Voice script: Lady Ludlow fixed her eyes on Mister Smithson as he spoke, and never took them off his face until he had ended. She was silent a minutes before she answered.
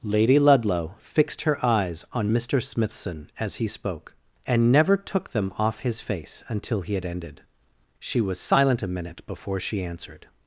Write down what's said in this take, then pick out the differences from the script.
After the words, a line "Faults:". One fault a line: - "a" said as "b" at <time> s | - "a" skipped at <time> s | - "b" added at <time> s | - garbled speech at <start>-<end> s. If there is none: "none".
Lady Ludlow fixed her eyes on Mister Smithson as he spoke, and never took them off his face until he had ended. She was silent a minute before she answered.
Faults:
- "minutes" said as "minute" at 8.9 s